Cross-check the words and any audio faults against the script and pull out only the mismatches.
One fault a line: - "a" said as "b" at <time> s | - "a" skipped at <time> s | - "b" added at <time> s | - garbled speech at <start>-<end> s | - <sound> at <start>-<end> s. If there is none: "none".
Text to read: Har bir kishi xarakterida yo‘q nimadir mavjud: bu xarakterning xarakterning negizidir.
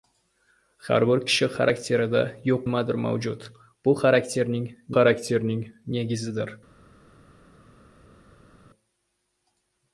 none